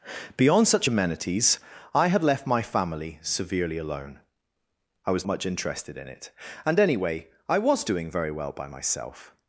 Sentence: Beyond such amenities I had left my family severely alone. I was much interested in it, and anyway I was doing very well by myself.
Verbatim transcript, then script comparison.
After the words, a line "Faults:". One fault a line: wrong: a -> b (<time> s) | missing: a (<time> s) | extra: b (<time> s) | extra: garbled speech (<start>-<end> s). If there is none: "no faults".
Beyond such amenities I had left my family severely alone. I was much interested in it, and anyway I was doing very well by myself.
Faults:
no faults